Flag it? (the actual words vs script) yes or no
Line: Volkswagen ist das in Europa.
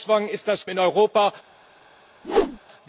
no